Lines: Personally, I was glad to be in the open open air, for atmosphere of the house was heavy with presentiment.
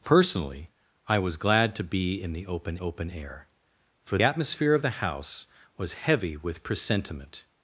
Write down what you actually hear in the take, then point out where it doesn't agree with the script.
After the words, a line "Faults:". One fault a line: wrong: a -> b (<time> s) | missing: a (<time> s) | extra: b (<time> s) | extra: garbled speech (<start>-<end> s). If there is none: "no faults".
Personally, I was glad to be in the open open air, for atmosphere of the house was heavy with presentiment.
Faults:
no faults